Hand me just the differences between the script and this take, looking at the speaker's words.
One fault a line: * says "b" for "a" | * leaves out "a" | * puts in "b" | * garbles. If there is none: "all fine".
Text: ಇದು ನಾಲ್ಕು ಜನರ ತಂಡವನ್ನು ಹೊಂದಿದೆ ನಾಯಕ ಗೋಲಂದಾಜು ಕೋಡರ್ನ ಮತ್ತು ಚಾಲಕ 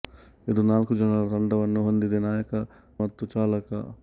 * leaves out "ಗೋಲಂದಾಜು ಕೋಡರ್ನ"